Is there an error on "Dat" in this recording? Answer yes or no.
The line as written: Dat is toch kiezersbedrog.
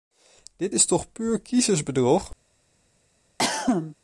yes